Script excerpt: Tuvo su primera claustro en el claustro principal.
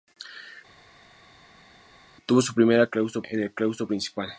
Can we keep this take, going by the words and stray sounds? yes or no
yes